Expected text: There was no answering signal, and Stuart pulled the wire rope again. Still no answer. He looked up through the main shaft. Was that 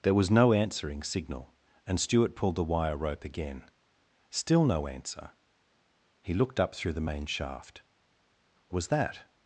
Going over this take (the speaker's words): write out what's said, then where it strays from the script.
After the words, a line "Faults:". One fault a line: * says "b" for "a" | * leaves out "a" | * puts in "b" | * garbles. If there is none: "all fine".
There was no answering signal, and Stuart pulled the wire rope again. Still no answer. He looked up through the main shaft. Was that
Faults:
all fine